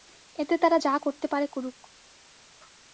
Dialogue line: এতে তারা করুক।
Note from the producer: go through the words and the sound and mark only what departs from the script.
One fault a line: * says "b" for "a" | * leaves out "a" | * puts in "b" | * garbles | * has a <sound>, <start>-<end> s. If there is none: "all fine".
* puts in "যা করতে পারে"